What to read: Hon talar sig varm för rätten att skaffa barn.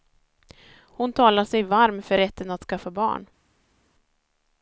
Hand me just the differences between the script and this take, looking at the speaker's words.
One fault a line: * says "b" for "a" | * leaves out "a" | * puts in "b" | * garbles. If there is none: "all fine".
all fine